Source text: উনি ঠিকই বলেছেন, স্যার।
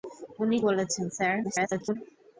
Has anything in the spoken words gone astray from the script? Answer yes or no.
yes